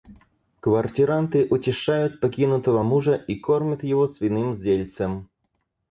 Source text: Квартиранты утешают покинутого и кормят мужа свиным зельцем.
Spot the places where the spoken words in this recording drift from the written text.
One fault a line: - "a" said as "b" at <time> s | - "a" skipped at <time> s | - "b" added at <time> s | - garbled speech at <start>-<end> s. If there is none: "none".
- "мужа" added at 2.8 s
- "мужа" said as "его" at 3.8 s